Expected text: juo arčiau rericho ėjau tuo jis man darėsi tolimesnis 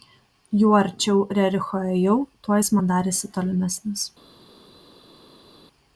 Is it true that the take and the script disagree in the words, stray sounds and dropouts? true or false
false